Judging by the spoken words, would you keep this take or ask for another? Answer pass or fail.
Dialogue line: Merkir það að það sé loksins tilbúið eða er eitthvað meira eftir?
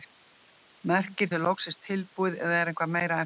fail